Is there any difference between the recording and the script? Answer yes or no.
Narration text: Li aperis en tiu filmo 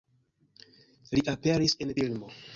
yes